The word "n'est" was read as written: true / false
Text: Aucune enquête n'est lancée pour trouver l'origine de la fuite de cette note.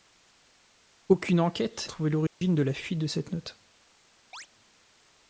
false